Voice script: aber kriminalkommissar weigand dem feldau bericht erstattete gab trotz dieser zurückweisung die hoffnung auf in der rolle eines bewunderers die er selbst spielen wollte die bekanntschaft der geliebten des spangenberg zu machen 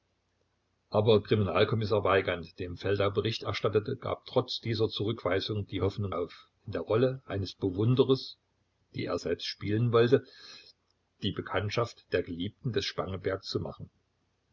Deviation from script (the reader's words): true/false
false